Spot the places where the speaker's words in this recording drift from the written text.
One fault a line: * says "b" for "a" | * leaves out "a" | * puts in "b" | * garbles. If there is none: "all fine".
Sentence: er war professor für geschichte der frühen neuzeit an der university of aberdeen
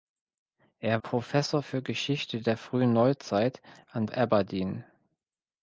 * leaves out "war"
* leaves out "der university of"